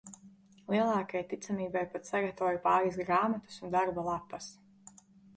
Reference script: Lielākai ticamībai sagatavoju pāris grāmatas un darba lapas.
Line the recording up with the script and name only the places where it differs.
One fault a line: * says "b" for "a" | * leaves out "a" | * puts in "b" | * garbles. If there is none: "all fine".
* puts in "pat"